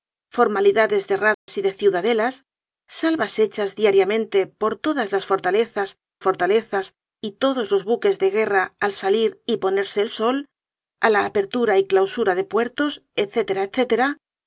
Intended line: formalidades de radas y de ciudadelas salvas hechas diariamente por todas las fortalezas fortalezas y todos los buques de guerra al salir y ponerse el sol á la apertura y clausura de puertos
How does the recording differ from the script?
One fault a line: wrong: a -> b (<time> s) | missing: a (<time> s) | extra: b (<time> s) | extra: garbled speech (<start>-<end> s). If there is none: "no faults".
no faults